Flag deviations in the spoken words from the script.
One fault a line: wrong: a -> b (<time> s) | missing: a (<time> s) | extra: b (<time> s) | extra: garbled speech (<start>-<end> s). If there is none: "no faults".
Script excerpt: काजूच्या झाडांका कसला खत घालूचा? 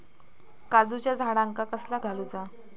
missing: खत (2.0 s)